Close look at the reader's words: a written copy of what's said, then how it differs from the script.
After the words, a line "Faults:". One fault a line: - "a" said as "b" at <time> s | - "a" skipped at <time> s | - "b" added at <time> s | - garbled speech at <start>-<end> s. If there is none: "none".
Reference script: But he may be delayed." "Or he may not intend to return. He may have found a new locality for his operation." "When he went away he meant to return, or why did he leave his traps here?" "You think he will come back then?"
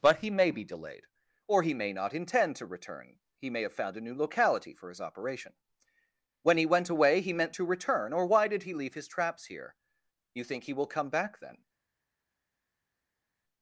But he may be delayed." "Or he may not intend to return. He may have found a new locality for his operation." "When he went away he meant to return, or why did he leave his traps here?" "You think he will come back then?"
Faults:
none